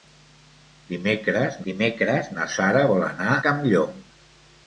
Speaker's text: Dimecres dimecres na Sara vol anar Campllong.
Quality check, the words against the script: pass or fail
pass